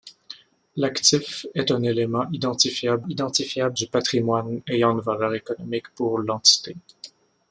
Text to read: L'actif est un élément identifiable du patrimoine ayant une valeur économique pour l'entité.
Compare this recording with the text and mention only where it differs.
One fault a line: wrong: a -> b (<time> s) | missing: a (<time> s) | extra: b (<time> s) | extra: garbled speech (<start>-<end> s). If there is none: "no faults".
extra: identifiable (3.1 s)